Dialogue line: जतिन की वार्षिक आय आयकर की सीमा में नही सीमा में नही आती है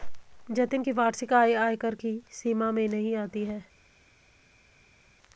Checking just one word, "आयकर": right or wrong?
right